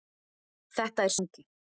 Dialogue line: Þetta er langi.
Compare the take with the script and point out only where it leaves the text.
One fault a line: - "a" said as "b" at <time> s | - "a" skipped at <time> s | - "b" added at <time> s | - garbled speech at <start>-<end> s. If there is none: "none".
none